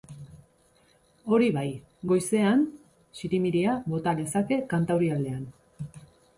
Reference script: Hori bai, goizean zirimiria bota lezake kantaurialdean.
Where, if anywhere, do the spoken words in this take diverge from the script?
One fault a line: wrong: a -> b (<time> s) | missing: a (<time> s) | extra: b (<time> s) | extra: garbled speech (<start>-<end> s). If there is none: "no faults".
no faults